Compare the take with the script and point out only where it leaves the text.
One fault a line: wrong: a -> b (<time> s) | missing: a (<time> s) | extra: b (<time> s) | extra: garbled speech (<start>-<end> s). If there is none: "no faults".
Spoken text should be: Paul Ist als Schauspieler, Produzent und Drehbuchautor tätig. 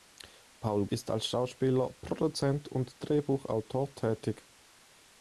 no faults